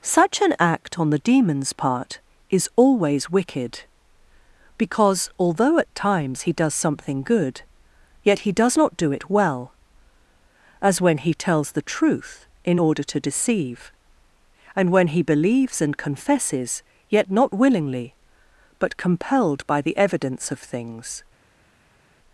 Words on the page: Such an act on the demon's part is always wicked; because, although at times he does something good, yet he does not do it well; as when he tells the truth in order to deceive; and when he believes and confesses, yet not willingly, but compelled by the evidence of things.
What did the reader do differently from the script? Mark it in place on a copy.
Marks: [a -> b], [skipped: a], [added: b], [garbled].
Such an act on the demon's part is always wicked; because, although at times he does something good, yet he does not do it well; as when he tells the truth in order to deceive; and when he believes and confesses, yet not willingly, but compelled by the evidence of things.